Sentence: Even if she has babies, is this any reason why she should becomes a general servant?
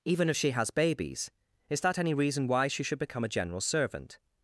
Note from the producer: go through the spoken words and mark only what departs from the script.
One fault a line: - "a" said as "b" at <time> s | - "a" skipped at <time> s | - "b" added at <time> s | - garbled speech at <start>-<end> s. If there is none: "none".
- "this" said as "that" at 1.8 s
- "becomes" said as "become" at 3.0 s